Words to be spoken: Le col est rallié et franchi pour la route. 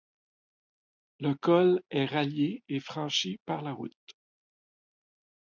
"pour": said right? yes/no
no